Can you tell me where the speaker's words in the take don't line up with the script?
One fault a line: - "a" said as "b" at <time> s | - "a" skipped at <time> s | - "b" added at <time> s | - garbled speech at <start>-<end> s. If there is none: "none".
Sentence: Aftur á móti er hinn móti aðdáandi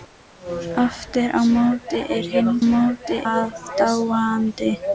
none